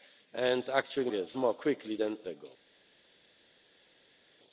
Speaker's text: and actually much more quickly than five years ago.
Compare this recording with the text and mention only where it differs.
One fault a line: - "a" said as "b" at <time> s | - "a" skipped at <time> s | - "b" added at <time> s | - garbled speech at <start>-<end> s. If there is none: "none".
- "much" said as "years" at 1.1 s
- "five years" skipped at 2.2 s